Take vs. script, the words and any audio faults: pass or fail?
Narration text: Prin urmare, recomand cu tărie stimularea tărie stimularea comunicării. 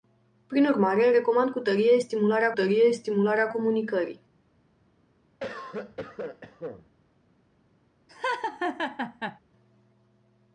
fail